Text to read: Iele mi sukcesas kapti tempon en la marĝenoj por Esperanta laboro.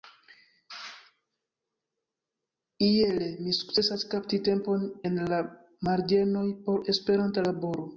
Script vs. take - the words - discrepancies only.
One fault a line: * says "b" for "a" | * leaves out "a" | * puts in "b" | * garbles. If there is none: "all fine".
all fine